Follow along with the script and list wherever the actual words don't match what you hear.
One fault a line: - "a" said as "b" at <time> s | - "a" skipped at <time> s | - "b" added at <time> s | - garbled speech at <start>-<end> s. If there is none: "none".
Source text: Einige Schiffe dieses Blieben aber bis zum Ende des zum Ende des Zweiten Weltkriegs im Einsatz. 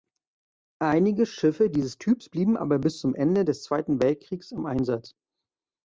- "Typs" added at 2.0 s
- "zum Ende des" skipped at 3.6 s